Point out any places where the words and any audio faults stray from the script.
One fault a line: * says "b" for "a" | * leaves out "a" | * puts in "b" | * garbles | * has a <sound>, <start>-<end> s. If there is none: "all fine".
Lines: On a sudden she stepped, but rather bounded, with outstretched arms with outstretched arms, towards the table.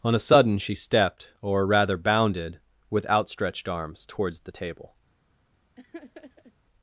* says "or" for "but"
* leaves out "with outstretched arms"
* has a laugh, 5.8-6.5 s